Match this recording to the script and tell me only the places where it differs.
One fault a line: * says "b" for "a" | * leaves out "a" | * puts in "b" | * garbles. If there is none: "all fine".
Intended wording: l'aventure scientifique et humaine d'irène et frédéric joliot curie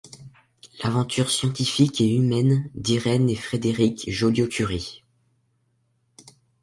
all fine